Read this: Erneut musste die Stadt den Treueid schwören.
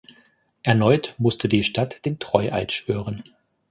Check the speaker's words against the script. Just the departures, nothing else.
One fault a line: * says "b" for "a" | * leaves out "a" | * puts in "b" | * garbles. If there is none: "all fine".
all fine